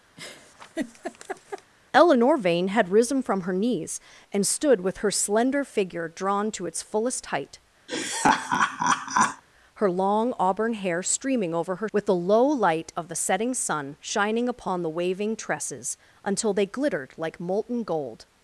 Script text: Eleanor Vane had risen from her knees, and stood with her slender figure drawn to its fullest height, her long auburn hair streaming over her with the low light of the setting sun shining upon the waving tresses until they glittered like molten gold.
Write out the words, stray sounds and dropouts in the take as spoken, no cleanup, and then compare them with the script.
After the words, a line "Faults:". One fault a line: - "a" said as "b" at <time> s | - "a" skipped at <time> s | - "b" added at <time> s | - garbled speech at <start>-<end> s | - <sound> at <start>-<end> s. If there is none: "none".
Eleanor Vane had risen from her knees, and stood with her slender figure drawn to its fullest height, her long auburn hair streaming over her with the low light of the setting sun shining upon the waving tresses until they glittered like molten gold.
Faults:
- laugh at 0.2-1.7 s
- laugh at 7.9-9.4 s